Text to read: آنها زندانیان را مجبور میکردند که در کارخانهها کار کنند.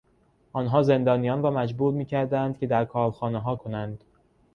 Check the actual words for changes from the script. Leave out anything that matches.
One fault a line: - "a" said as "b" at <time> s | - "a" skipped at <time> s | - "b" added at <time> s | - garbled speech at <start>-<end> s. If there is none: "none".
- "کار" skipped at 3.5 s